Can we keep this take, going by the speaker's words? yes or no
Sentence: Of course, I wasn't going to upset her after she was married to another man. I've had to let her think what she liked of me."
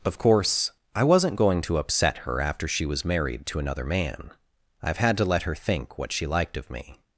yes